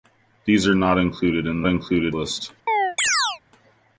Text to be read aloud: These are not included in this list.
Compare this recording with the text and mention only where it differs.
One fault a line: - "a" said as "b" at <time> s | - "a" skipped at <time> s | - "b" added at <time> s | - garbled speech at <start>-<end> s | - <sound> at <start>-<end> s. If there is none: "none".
- "this" said as "included" at 1.7 s
- chirp at 2.7-3.4 s